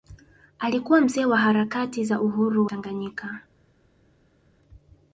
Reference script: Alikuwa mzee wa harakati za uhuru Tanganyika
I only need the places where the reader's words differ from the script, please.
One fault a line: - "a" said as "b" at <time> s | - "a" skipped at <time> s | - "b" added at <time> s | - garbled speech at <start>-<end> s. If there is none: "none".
none